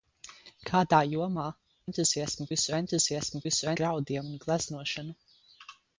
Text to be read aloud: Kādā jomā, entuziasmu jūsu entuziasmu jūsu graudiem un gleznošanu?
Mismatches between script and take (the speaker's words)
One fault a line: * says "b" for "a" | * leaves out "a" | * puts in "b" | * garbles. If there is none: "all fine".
all fine